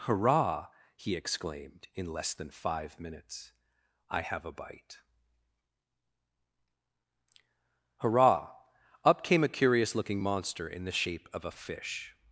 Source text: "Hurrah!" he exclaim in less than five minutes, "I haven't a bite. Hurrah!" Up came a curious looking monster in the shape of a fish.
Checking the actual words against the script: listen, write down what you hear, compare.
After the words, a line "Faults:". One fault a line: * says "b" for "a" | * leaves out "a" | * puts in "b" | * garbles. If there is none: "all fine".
"Hurrah!" he exclaimed in less than five minutes, "I have a bite. Hurrah!" Up came a curious looking monster in the shape of a fish.
Faults:
* says "exclaimed" for "exclaim"
* says "have" for "haven't"